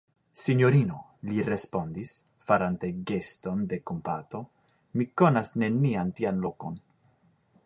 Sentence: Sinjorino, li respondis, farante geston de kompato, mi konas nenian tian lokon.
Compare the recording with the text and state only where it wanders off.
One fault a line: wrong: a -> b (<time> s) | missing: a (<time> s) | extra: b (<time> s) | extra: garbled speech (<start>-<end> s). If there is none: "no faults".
no faults